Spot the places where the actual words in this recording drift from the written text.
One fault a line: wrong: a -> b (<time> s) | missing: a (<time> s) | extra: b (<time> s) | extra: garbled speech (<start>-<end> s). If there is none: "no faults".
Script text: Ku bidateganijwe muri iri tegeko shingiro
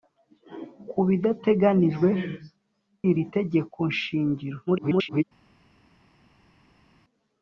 missing: muri (2.1 s)
extra: garbled speech (4.7-5.2 s)